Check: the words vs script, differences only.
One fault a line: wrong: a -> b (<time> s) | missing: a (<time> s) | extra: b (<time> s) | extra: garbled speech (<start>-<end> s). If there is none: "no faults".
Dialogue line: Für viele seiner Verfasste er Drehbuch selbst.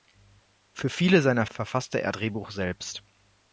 no faults